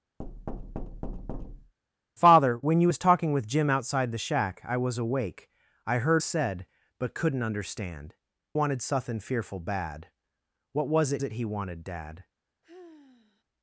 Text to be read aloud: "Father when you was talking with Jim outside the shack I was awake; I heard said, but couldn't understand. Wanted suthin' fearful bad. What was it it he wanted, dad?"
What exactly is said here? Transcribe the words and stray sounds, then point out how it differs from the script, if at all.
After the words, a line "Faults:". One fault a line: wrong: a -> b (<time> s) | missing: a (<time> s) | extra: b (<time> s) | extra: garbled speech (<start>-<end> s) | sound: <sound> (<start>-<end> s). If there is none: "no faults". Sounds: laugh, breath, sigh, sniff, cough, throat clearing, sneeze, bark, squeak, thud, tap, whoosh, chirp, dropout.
"Father when you was talking with Jim outside the shack I was awake; I heard said, but couldn't understand. Wanted suthin' fearful bad. What was it it he wanted, dad?"
Faults:
sound: thud (0.2-1.7 s)
sound: sigh (12.6-13.4 s)